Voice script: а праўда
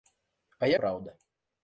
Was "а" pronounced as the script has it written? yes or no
yes